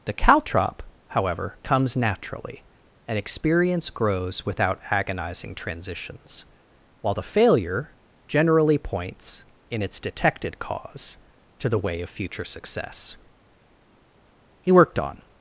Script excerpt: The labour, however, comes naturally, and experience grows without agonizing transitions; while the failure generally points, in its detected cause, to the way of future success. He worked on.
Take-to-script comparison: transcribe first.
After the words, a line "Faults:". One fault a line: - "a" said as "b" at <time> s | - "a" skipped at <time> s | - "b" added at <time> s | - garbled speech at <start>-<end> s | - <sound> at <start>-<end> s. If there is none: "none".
The caltrop, however, comes naturally, and experience grows without agonizing transitions; while the failure generally points, in its detected cause, to the way of future success. He worked on.
Faults:
- "labour" said as "caltrop" at 0.1 s